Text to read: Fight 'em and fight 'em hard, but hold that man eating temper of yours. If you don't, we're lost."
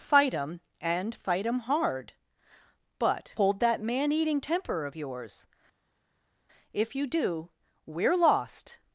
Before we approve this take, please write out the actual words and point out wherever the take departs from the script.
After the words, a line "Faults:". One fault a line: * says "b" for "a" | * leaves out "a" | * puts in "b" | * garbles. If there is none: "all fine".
Fight 'em and fight 'em hard, but hold that man eating temper of yours. If you do, we're lost."
Faults:
* says "do" for "don't"